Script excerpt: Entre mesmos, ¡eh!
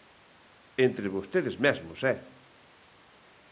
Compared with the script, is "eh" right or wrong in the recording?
right